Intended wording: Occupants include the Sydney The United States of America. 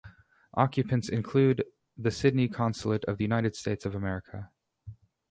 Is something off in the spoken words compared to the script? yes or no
yes